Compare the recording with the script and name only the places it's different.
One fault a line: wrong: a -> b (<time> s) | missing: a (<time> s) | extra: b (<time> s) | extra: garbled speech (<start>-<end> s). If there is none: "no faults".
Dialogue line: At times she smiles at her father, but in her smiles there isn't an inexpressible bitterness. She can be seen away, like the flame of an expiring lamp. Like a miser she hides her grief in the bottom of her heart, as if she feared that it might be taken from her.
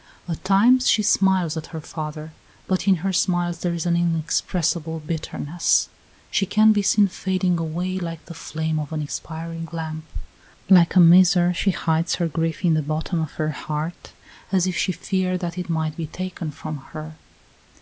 wrong: isn't -> is (3.8 s)
extra: fading (7.1 s)